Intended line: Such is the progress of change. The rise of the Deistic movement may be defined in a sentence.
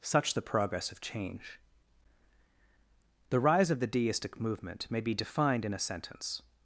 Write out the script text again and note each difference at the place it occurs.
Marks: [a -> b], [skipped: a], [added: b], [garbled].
Such [skipped: is] the progress of change. The rise of the Deistic movement may be defined in a sentence.